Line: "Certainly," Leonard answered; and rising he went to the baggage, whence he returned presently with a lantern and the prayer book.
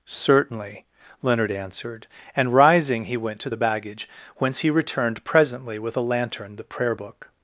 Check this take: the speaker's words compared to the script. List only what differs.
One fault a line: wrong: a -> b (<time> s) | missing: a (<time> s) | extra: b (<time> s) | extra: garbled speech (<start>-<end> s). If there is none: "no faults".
missing: and (6.6 s)